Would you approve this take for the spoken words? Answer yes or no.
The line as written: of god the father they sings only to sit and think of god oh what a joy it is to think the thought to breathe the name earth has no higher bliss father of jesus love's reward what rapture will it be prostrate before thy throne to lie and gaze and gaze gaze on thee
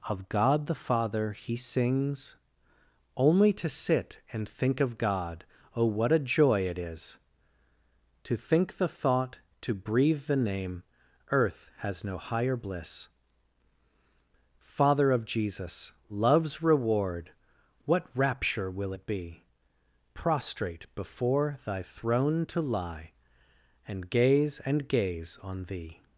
no